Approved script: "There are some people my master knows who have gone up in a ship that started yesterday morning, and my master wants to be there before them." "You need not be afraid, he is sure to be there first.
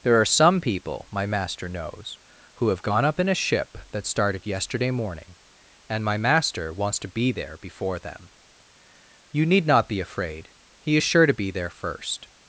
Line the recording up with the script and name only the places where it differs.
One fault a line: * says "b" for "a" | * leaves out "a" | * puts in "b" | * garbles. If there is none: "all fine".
all fine